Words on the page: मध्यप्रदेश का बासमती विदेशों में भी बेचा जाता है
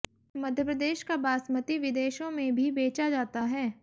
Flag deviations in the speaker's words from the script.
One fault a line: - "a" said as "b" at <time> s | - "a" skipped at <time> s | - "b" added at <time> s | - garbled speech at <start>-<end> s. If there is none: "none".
none